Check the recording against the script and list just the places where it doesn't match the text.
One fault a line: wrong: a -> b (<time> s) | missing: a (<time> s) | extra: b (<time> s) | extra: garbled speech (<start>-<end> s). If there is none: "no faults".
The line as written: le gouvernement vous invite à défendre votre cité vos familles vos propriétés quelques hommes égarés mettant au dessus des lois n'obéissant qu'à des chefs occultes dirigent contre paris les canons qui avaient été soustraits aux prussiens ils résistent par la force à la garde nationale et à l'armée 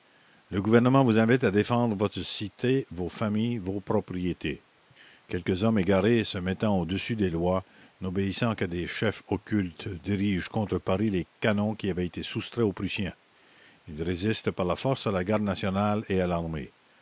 extra: se (6.2 s)